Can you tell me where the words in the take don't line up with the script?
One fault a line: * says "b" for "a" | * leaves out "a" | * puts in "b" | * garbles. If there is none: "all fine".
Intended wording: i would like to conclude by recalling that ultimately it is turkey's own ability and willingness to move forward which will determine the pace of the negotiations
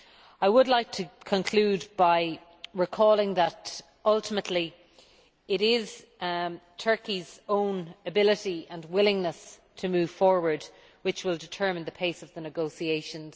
all fine